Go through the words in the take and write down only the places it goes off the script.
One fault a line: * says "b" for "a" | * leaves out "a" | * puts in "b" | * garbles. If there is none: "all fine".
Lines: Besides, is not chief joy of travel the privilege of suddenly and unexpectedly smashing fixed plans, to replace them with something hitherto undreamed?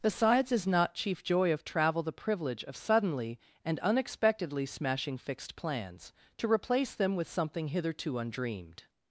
all fine